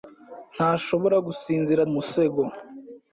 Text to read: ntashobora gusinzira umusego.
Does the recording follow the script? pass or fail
pass